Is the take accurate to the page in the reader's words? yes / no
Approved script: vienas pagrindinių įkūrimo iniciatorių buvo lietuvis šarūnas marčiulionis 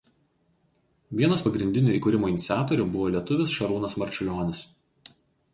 yes